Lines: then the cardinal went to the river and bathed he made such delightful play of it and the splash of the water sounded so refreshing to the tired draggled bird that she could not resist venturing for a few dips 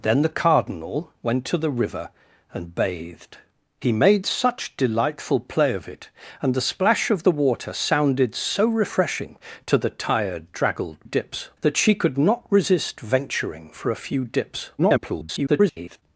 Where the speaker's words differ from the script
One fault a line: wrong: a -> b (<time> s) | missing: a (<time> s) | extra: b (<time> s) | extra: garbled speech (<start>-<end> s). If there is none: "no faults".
wrong: bird -> dips (11.0 s)
extra: garbled speech (14.8-16.0 s)